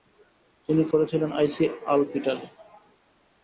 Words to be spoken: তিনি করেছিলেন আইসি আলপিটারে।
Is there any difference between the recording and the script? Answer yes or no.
no